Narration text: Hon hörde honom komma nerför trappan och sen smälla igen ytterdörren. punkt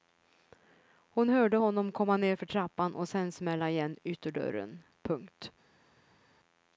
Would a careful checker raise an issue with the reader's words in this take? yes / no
no